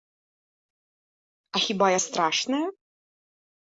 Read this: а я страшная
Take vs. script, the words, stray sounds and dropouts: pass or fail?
fail